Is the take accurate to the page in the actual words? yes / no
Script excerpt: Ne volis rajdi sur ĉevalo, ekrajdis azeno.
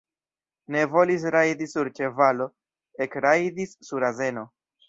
no